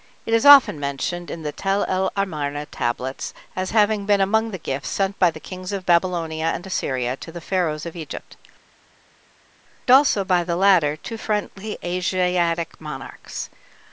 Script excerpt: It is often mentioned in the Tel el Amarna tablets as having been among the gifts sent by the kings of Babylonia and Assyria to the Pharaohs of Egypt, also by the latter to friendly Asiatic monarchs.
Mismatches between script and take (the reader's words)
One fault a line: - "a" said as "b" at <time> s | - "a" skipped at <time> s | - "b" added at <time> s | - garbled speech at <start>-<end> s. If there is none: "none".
none